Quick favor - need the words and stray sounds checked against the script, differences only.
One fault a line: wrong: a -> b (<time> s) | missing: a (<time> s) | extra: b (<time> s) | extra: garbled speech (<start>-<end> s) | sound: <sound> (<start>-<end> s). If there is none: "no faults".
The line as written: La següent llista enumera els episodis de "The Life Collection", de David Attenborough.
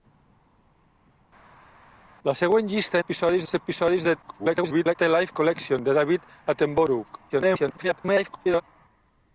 wrong: enumera -> episodis (3.0 s)
extra: garbled speech (4.2-5.0 s)
extra: garbled speech (7.3-8.6 s)